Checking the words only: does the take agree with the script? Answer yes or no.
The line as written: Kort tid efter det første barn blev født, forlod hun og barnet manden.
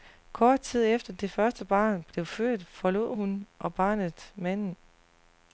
yes